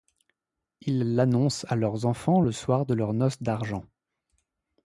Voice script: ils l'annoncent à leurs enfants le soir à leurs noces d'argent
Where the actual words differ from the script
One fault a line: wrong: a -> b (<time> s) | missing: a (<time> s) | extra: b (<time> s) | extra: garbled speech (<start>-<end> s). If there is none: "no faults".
wrong: à -> de (2.8 s)